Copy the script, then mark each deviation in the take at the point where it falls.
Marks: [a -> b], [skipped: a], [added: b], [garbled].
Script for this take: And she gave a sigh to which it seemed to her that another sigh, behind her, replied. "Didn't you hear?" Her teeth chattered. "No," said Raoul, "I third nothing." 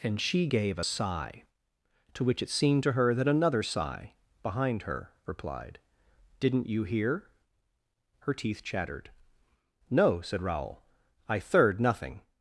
And she gave a sigh to which it seemed to her that another sigh, behind her, replied. "Didn't you hear?" Her teeth chattered. "No," said Raoul, "I third nothing."